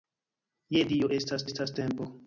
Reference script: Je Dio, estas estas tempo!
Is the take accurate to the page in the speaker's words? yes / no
yes